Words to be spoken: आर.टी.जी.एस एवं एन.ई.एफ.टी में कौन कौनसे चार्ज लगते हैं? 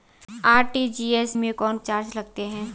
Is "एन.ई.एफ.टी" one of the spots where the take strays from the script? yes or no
yes